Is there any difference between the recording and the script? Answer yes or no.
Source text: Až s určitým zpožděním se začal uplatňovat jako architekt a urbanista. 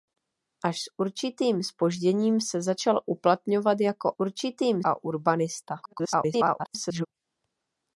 yes